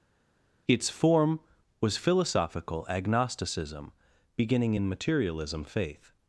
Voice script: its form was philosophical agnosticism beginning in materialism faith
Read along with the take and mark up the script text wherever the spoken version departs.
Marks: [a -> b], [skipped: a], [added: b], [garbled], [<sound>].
its form was philosophical agnosticism beginning in materialism faith